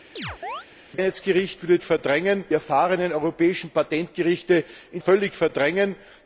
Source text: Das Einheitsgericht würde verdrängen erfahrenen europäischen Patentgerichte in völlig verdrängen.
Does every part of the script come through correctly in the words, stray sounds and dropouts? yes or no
no